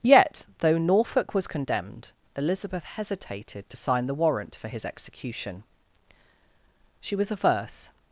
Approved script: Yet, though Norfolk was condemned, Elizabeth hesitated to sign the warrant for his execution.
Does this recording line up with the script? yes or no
no